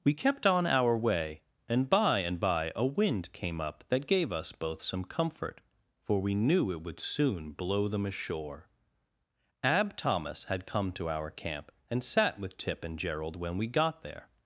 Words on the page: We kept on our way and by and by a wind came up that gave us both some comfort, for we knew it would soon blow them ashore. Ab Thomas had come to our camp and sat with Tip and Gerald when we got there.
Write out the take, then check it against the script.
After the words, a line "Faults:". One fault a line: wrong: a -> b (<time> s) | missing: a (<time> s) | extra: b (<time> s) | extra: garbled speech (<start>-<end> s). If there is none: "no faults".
We kept on our way and by and by a wind came up that gave us both some comfort, for we knew it would soon blow them ashore. Ab Thomas had come to our camp and sat with Tip and Gerald when we got there.
Faults:
no faults